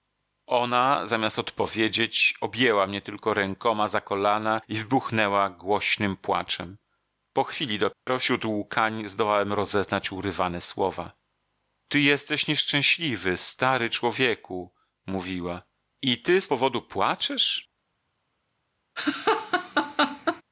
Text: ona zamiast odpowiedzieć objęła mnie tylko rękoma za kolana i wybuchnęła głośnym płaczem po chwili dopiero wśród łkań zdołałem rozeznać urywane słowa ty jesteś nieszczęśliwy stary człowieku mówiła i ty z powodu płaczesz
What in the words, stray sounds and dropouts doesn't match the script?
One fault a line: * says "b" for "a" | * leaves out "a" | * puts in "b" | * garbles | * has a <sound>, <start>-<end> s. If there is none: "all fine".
* has a dropout, 7.9-8.1 s
* has a laugh, 19.0-20.4 s